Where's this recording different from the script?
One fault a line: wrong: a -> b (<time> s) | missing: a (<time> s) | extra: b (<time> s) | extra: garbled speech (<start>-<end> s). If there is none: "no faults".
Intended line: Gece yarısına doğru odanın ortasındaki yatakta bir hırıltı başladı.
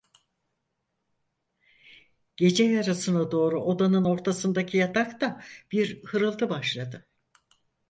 no faults